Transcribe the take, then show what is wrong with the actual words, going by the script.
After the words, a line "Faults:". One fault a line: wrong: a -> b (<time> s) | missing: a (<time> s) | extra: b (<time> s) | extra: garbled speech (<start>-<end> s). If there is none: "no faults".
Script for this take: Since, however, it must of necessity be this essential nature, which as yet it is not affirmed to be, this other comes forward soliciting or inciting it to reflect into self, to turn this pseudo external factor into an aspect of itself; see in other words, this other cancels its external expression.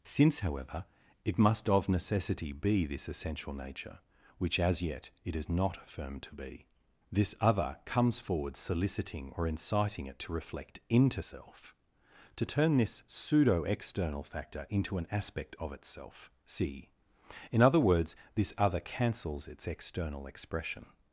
Since, however, it must of necessity be this essential nature, which as yet it is not affirmed to be, this other comes forward soliciting or inciting it to reflect into self, to turn this pseudo external factor into an aspect of itself; see in other words, this other cancels its external expression.
Faults:
no faults